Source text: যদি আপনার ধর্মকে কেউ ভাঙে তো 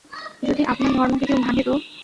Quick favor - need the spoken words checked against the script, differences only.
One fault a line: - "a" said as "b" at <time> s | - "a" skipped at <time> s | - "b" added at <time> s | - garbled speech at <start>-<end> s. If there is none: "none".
none